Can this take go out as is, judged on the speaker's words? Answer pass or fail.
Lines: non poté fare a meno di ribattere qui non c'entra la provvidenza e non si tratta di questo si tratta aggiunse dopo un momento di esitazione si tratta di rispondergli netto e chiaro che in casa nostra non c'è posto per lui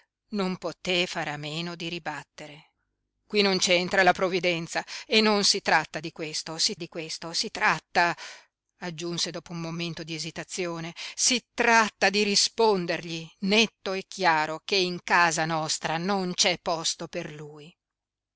fail